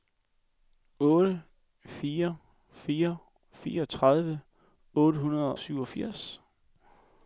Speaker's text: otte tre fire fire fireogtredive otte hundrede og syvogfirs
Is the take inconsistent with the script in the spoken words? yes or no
yes